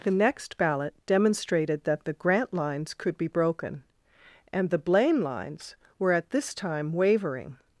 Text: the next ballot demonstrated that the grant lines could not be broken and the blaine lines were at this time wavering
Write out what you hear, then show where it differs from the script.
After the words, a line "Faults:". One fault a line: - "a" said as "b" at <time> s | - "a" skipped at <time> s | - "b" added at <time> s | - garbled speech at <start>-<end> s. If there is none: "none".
the next ballot demonstrated that the grant lines could be broken and the blaine lines were at this time wavering
Faults:
- "not" skipped at 3.2 s